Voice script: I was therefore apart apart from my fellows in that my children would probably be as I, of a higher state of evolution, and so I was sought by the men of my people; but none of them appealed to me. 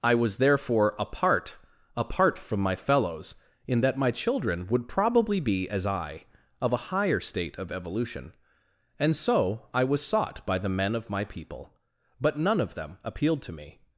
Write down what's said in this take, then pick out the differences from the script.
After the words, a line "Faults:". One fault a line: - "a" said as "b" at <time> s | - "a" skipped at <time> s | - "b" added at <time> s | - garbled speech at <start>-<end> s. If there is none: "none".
I was therefore apart apart from my fellows in that my children would probably be as I, of a higher state of evolution, and so I was sought by the men of my people; but none of them appealed to me.
Faults:
none